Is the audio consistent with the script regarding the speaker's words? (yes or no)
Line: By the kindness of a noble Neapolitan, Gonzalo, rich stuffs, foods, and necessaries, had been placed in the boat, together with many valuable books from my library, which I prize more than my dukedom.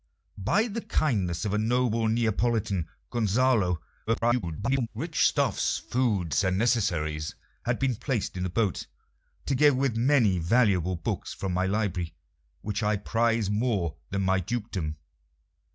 no